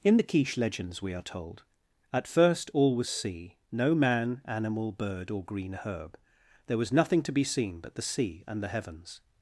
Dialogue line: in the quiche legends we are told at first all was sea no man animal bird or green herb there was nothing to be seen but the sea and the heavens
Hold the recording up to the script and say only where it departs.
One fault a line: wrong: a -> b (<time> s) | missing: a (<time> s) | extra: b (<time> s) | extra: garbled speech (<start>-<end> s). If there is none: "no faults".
no faults